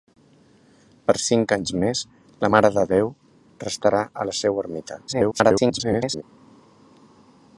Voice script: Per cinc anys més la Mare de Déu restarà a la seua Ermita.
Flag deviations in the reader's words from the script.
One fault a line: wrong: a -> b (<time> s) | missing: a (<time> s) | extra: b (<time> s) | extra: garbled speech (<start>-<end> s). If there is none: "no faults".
extra: garbled speech (5.1-6.2 s)